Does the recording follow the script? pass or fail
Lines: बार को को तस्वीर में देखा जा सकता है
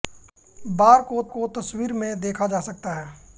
pass